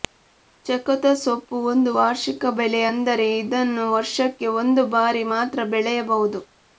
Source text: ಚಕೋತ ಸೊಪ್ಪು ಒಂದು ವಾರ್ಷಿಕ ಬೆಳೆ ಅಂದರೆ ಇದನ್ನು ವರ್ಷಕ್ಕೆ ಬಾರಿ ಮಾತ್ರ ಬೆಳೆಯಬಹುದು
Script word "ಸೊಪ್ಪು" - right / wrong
right